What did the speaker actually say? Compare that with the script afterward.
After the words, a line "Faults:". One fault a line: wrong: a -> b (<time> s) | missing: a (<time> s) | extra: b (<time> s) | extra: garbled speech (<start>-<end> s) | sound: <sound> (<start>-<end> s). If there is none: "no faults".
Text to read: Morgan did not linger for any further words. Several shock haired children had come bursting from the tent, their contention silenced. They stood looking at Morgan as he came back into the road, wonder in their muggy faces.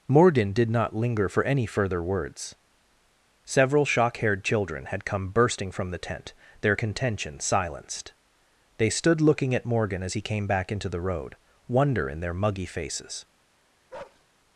Morgan did not linger for any further words. Several shock haired children had come bursting from the tent, their contention silenced. They stood looking at Morgan as he came back into the road, wonder in their muggy faces.
Faults:
sound: bark (13.9-14.2 s)